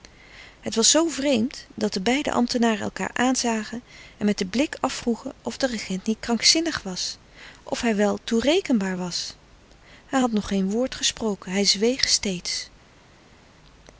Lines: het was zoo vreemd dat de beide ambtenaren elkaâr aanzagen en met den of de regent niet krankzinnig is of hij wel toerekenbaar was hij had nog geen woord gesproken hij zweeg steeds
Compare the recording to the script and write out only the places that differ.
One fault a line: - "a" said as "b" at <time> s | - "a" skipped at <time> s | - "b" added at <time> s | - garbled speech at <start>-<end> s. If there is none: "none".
- "blik afvroegen" added at 4.5 s
- "is" said as "was" at 6.8 s